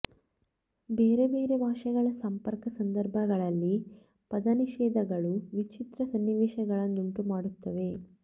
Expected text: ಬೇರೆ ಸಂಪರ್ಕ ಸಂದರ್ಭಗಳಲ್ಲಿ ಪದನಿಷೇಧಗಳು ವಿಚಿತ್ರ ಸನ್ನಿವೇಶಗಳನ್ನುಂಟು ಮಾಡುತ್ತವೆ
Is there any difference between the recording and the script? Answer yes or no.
yes